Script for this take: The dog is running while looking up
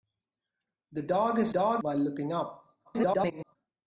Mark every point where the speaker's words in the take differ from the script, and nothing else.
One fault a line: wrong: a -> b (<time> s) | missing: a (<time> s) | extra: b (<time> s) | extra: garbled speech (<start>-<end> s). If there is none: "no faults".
wrong: running -> dog (1.5 s)
extra: garbled speech (2.8-3.6 s)